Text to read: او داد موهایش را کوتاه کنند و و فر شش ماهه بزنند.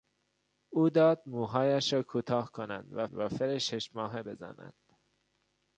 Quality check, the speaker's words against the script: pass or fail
pass